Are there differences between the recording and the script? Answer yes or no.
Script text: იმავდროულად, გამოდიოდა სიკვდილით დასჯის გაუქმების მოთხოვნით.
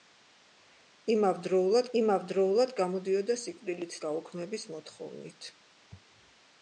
yes